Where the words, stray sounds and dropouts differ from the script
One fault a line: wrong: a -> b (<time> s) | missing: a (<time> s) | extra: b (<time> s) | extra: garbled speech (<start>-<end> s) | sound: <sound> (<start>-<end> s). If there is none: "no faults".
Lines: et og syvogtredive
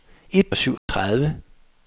sound: dropout (0.8-0.9 s)